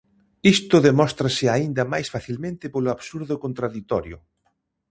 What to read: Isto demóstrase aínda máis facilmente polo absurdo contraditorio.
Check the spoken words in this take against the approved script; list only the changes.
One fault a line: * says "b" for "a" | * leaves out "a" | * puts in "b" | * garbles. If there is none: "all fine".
all fine